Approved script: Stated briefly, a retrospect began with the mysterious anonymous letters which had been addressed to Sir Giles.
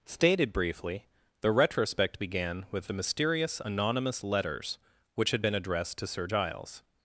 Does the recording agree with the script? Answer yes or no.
no